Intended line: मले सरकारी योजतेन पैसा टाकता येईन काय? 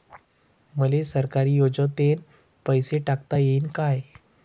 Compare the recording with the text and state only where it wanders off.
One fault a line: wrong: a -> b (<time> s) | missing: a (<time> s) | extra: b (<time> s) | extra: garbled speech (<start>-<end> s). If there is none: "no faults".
no faults